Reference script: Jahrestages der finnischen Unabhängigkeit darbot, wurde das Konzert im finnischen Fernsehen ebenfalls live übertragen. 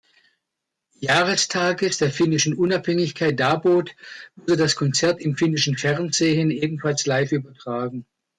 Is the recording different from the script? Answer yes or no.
no